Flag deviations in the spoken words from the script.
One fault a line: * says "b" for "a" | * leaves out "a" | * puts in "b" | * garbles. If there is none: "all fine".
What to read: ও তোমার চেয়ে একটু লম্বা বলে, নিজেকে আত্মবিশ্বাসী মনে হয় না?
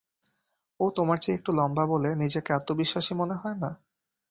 all fine